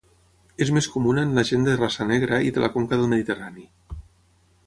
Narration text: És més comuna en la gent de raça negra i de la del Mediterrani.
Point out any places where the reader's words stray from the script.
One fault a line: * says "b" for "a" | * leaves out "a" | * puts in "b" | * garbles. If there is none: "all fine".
* puts in "conca"